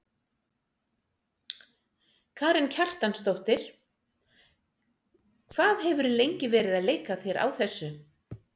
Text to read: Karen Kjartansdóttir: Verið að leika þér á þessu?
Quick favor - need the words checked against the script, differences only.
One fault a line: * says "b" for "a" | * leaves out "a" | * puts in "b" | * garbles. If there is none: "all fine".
* puts in "Hvað hefurðu lengi"